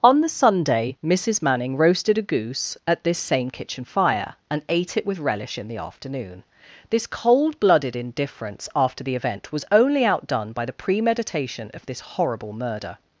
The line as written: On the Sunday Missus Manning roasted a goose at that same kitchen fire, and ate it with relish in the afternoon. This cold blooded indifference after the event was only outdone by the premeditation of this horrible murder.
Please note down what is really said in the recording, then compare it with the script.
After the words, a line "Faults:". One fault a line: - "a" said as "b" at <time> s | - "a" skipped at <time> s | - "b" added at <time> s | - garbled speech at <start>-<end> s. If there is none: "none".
On the Sunday Missus Manning roasted a goose at this same kitchen fire, and ate it with relish in the afternoon. This cold blooded indifference after the event was only outdone by the premeditation of this horrible murder.
Faults:
- "that" said as "this" at 3.0 s